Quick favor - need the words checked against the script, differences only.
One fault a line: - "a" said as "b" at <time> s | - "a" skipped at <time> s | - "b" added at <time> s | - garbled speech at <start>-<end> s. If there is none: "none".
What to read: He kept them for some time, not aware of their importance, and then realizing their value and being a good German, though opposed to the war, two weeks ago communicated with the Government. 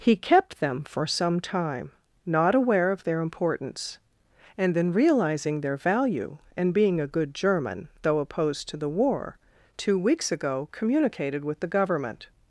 none